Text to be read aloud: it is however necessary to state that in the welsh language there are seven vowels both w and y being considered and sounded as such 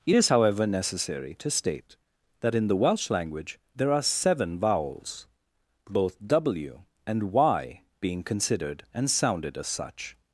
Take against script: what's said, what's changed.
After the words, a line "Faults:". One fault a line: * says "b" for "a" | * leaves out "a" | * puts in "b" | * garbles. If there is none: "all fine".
it is however necessary to state that in the welsh language there are seven vowels both w and y being considered and sounded as such
Faults:
all fine